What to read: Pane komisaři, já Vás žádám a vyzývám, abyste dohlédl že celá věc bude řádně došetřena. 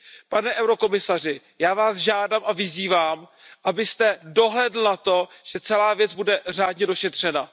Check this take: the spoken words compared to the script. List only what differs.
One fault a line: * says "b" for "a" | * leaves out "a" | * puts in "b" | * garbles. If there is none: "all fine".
* puts in "na to"